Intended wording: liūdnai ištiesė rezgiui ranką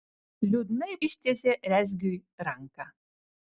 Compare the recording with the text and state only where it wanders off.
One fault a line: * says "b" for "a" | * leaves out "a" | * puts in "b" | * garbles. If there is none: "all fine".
all fine